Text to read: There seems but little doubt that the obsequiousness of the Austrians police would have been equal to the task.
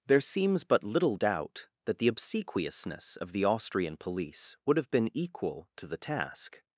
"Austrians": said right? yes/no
no